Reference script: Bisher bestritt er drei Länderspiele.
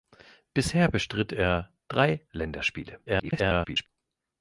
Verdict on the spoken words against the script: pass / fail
fail